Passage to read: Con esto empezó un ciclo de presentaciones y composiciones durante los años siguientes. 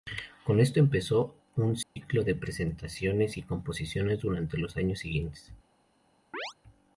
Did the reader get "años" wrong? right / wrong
right